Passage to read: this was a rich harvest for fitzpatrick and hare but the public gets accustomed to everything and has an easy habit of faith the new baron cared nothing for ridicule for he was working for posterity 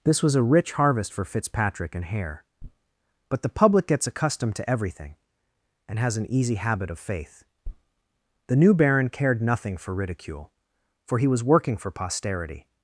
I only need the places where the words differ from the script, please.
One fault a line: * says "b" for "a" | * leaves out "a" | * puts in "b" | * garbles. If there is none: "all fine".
all fine